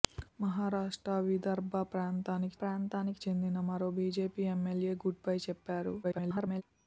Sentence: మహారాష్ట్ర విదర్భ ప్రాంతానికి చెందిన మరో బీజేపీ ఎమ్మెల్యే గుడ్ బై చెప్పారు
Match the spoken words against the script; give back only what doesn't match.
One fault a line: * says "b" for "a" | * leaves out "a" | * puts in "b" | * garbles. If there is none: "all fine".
* puts in "ప్రాంతానికి"
* garbles